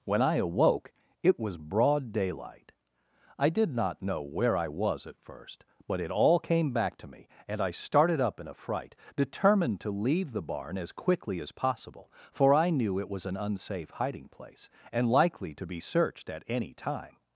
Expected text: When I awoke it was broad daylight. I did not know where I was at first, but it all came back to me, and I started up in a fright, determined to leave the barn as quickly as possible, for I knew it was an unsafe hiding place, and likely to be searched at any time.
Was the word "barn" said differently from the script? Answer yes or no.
no